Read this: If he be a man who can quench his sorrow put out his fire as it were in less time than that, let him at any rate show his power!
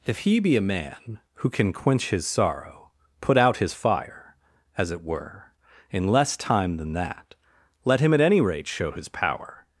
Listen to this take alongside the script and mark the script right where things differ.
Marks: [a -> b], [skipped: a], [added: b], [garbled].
If he be a man who can quench his sorrow put out his fire as it were in less time than that, let him at any rate show his power!